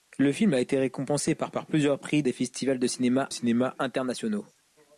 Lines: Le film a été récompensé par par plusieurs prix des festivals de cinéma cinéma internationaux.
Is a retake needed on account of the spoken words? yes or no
no